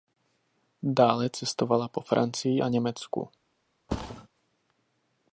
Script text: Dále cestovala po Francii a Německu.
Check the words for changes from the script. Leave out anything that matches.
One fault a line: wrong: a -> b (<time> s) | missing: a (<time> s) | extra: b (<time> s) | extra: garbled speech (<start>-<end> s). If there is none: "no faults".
no faults